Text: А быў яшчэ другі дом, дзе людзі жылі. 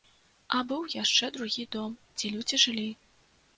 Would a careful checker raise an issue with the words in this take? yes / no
no